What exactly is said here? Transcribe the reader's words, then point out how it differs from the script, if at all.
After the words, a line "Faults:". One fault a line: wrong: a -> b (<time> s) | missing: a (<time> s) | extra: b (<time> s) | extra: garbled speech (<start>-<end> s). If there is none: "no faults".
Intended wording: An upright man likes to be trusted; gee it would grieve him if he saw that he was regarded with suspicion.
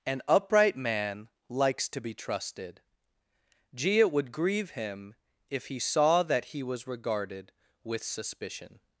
An upright man likes to be trusted; gee it would grieve him if he saw that he was regarded with suspicion.
Faults:
no faults